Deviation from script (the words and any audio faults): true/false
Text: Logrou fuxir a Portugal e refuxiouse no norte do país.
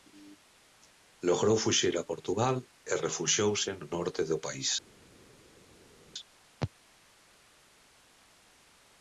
false